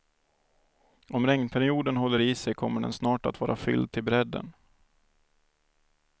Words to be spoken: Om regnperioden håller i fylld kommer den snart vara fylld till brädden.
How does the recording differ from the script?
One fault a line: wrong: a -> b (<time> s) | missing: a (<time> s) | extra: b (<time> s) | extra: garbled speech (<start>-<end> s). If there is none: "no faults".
wrong: fylld -> sig (2.3 s)
extra: att (3.3 s)